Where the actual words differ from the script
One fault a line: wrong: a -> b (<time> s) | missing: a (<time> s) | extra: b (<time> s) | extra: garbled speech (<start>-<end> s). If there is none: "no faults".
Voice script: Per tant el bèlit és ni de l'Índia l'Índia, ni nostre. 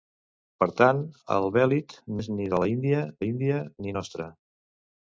no faults